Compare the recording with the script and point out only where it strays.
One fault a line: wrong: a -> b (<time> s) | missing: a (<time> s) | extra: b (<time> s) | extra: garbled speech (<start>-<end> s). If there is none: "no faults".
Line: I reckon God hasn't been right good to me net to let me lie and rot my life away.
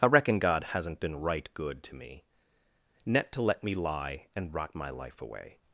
no faults